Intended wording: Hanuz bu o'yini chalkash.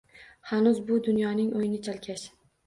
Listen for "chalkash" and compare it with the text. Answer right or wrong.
right